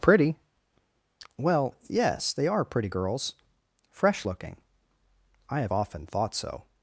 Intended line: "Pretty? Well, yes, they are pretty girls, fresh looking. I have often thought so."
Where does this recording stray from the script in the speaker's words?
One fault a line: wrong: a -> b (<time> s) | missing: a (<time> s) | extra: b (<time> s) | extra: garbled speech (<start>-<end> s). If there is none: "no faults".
no faults